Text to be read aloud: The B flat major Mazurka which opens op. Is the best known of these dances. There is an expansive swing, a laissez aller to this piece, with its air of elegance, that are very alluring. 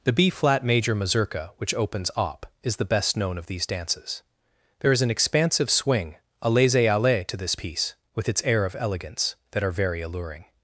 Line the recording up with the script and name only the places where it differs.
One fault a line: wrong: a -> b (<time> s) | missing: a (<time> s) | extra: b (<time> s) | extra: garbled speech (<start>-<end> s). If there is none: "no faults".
no faults